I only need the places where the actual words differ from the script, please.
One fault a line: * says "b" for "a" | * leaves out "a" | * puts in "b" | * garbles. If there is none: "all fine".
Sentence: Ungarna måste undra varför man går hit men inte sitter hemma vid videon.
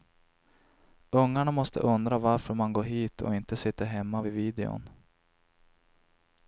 * says "och" for "men"